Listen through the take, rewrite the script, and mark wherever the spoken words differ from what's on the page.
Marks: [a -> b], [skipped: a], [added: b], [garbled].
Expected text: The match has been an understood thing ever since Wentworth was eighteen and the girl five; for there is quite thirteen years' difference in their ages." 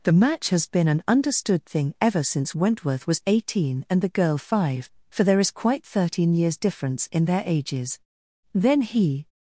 The match has been an understood thing ever since Wentworth was eighteen and the girl five; for there is quite thirteen years' difference in their ages." [added: Then he]